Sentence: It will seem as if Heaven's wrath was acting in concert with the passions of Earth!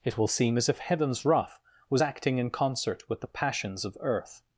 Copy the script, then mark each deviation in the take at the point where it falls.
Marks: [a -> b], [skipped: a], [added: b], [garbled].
It will seem as if Heaven's wrath was acting in concert with the passions of Earth!